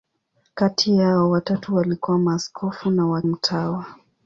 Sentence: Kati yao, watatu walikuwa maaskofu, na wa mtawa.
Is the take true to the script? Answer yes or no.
yes